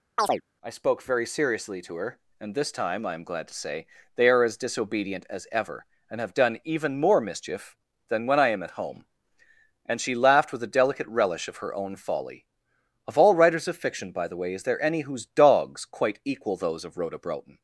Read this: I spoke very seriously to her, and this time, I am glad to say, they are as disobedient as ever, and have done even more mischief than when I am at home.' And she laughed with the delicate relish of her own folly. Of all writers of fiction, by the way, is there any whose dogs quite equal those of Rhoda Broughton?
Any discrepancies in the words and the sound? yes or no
yes